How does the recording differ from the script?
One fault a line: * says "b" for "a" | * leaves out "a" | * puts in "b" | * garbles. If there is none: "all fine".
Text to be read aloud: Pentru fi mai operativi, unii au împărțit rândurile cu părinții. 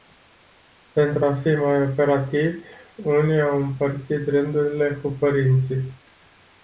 * puts in "a"